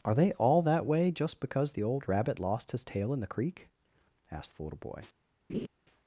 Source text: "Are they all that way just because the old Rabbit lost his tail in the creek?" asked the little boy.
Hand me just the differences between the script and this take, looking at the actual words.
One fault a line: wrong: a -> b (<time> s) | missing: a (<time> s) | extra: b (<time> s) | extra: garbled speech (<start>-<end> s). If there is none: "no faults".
no faults